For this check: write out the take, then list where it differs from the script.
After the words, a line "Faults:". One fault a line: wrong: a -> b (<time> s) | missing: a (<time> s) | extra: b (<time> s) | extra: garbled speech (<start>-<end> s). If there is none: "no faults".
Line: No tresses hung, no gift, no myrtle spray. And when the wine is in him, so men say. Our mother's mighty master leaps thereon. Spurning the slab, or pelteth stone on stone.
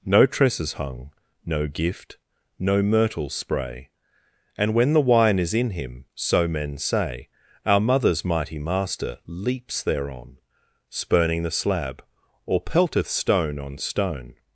No tresses hung, no gift, no myrtle spray. And when the wine is in him, so men say. Our mother's mighty master leaps thereon. Spurning the slab, or pelteth stone on stone.
Faults:
no faults